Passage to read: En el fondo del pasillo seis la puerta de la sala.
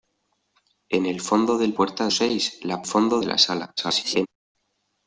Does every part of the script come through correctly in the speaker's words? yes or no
no